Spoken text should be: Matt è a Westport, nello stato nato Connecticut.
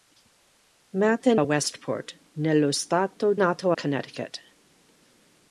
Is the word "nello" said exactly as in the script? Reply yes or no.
yes